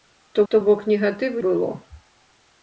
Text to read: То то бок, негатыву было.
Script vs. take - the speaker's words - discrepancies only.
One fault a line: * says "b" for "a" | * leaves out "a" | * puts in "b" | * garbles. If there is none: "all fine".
all fine